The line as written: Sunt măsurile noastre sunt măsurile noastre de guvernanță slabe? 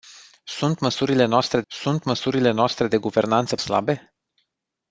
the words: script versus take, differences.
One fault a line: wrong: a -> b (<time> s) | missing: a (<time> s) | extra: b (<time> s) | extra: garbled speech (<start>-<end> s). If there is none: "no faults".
no faults